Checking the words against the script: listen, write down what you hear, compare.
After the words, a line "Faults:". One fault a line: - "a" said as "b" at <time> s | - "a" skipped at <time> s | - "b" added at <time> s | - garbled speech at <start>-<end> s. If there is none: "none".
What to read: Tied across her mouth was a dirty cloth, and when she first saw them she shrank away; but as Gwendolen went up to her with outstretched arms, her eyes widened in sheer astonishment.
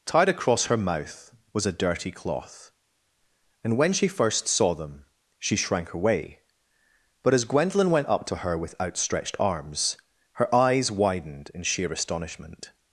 Tied across her mouth was a dirty cloth, and when she first saw them she shrank away; but as Gwendolen went up to her with outstretched arms, her eyes widened in sheer astonishment.
Faults:
none